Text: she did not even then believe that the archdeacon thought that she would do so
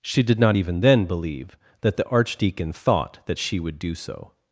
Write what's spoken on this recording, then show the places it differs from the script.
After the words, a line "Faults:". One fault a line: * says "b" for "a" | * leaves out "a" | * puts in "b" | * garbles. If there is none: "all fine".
she did not even then believe that the archdeacon thought that she would do so
Faults:
all fine